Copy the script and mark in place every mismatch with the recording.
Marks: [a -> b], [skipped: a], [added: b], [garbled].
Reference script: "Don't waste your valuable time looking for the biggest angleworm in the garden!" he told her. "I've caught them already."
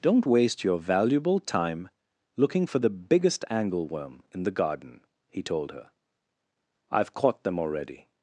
"Don't waste your valuable time looking for the biggest angleworm in the garden!" he told her. "I've caught them already."